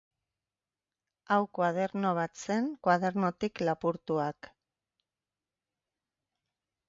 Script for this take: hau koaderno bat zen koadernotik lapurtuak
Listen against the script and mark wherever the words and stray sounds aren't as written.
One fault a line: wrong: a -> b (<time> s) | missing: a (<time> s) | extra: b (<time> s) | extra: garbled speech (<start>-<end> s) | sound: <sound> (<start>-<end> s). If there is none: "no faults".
no faults